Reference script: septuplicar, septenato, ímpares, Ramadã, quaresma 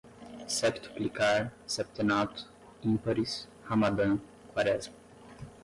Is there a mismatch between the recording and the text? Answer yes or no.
no